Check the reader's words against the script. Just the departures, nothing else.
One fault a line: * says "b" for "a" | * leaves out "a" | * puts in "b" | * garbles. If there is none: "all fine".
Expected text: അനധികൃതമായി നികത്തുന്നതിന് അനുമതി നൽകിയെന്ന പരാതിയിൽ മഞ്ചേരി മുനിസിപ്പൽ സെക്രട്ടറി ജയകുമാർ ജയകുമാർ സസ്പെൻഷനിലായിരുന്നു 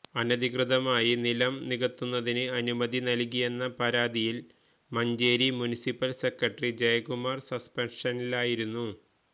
* puts in "നിലം"
* leaves out "ജയകുമാർ"